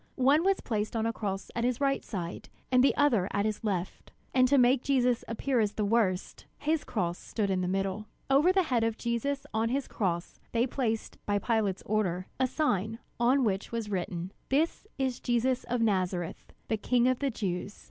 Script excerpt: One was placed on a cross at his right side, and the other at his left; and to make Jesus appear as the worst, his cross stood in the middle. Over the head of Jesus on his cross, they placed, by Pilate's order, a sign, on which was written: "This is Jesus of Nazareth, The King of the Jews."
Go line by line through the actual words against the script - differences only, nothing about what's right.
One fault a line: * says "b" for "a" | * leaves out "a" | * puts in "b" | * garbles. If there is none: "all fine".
all fine